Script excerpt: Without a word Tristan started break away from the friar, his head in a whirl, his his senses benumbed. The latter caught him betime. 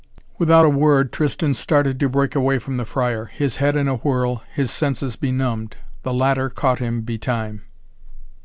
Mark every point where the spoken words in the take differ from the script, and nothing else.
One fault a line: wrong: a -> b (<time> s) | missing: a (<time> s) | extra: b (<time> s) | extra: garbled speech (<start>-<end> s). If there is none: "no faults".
extra: to (2.0 s)
missing: his (4.7 s)